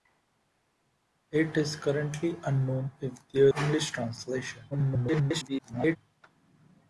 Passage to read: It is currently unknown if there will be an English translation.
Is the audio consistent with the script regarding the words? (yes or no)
no